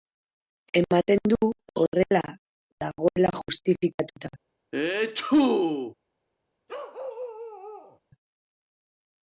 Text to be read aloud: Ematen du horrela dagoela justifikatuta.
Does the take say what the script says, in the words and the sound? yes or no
no